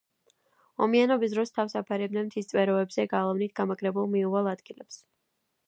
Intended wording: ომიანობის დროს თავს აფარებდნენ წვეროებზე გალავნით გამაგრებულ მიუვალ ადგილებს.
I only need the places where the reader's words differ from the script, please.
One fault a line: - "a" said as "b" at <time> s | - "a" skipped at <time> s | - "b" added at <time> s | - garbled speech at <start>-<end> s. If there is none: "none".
- "მთის" added at 2.3 s